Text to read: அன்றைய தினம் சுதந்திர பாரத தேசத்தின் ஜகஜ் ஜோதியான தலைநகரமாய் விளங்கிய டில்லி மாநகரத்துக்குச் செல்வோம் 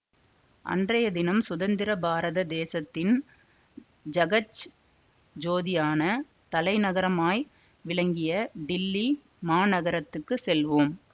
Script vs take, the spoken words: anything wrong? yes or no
no